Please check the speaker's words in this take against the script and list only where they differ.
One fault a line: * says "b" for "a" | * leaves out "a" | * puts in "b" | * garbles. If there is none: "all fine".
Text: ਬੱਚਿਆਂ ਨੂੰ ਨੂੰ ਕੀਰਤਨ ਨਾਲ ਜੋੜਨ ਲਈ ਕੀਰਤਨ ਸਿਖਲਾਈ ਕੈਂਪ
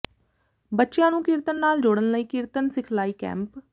* leaves out "ਨੂੰ"